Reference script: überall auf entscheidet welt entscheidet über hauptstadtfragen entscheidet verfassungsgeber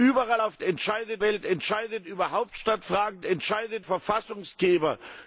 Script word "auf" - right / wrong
right